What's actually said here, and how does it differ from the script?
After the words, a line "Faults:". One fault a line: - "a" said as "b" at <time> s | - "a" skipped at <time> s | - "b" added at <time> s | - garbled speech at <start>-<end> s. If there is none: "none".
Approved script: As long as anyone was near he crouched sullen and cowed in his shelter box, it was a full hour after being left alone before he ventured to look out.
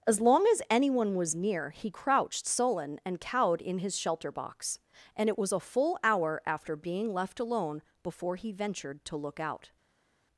As long as anyone was near he crouched sullen and cowed in his shelter box, and it was a full hour after being left alone before he ventured to look out.
Faults:
- "and" added at 5.2 s